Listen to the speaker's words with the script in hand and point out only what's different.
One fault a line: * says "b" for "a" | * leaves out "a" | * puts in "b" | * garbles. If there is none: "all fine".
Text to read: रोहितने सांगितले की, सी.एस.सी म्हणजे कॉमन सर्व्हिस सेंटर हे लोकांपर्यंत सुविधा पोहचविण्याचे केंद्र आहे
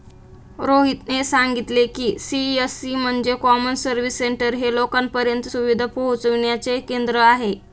all fine